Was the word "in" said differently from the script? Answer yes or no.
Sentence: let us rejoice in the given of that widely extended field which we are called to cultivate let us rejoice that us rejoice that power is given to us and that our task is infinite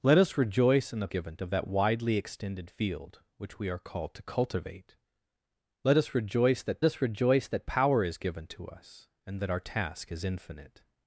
no